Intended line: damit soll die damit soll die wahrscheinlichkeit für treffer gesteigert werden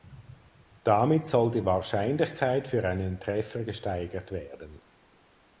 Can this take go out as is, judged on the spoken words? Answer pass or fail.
fail